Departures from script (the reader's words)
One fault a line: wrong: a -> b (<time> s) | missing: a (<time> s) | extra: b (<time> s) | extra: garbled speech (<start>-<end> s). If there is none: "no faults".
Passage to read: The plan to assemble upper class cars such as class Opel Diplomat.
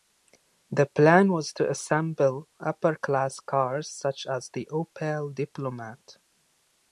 extra: was (1.3 s)
wrong: class -> the (4.5 s)